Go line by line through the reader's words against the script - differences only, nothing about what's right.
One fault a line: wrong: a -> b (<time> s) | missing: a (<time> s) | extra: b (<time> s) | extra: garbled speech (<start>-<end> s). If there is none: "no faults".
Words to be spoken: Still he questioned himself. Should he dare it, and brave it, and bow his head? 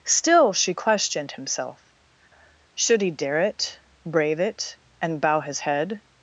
wrong: he -> she (0.5 s)
missing: and (3.8 s)